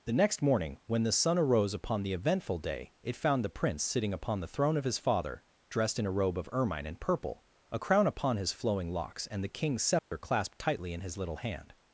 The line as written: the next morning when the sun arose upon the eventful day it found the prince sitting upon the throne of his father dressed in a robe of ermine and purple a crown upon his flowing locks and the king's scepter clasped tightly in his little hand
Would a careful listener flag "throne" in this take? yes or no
no